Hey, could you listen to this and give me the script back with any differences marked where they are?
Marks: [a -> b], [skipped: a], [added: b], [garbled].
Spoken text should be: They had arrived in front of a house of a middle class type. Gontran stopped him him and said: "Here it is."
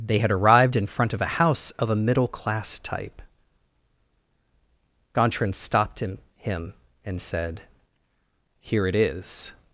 They had arrived in front of a house of a middle class type. Gontran stopped him him and said: "Here it is."